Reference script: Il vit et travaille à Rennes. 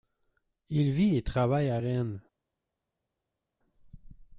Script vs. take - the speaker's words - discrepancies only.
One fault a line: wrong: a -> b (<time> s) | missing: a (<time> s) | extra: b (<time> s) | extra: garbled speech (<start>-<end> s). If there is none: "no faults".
no faults